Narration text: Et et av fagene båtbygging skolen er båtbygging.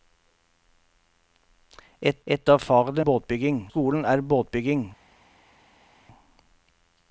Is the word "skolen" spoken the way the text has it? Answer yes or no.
yes